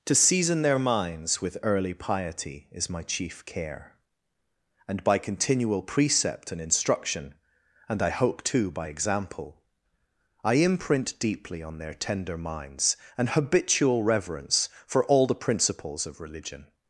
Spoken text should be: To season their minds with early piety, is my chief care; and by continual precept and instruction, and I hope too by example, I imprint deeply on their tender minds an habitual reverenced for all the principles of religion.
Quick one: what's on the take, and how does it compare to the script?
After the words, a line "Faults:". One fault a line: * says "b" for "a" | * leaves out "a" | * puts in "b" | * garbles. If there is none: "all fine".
To season their minds with early piety, is my chief care; and by continual precept and instruction, and I hope too by example, I imprint deeply on their tender minds an habitual reverence for all the principles of religion.
Faults:
* says "reverence" for "reverenced"